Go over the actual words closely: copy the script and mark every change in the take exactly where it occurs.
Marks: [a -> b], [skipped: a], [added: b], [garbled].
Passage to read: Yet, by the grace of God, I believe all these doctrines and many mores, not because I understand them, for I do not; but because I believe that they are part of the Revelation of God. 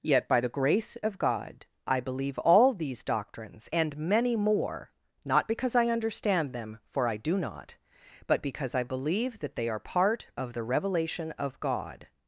Yet, by the grace of God, I believe all these doctrines and many [mores, -> more] not because I understand them, for I do not; but because I believe that they are part of the Revelation of God.